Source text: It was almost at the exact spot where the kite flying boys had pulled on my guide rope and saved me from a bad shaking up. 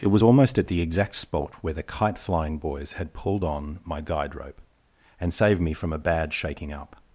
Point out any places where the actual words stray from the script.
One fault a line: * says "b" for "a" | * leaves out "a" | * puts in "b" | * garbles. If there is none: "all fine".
all fine